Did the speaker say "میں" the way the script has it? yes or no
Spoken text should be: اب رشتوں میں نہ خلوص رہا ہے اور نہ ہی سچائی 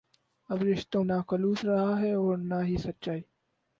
no